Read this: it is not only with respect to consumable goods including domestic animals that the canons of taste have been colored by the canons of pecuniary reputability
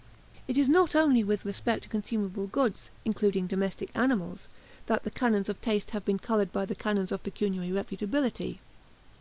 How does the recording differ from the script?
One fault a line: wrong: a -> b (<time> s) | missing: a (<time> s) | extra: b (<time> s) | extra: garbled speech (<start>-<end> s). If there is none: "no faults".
no faults